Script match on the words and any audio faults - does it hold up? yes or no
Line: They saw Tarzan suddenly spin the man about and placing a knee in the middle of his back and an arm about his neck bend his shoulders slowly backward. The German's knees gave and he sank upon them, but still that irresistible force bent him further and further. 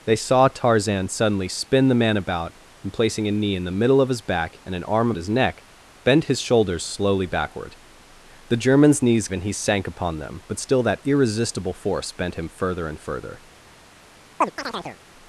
no